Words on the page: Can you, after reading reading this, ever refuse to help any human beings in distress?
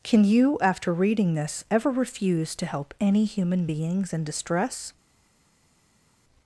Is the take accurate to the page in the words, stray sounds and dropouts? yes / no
no